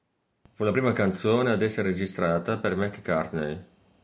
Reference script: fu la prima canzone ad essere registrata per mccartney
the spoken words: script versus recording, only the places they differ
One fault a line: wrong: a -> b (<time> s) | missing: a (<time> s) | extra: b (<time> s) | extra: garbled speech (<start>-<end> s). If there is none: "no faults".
no faults